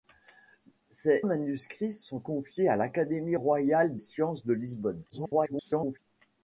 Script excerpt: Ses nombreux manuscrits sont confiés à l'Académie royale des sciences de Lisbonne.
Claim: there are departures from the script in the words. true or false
true